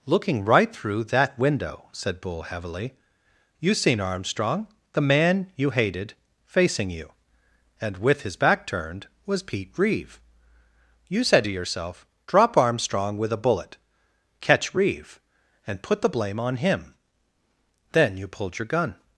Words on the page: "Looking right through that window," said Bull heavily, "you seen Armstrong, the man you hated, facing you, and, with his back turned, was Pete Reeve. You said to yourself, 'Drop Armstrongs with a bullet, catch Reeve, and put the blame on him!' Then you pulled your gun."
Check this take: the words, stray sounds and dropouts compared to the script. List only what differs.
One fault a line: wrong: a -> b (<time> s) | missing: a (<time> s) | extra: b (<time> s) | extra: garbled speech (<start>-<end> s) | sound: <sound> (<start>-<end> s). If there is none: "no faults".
wrong: Armstrongs -> Armstrong (12.6 s)